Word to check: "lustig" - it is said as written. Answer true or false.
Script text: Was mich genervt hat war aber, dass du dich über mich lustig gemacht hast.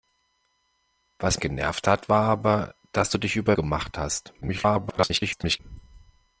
false